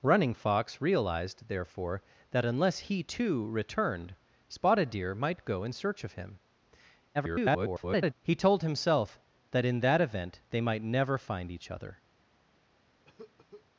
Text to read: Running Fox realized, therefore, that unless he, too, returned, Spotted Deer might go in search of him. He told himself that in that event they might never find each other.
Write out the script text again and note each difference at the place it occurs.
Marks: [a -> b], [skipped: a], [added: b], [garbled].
Running Fox realized, therefore, that unless he, too, returned, Spotted Deer might go in search of him. [garbled] He told himself that in that event they might never find each other.